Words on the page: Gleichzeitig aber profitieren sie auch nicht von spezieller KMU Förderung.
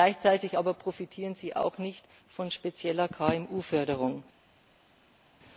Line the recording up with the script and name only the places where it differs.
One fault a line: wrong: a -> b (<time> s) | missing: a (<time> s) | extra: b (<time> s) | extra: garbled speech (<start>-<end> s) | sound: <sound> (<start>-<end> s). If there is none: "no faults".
no faults